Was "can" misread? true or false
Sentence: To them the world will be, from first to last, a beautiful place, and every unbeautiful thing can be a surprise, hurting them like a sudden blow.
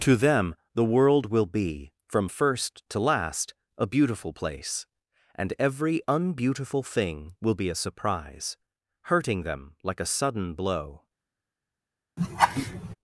true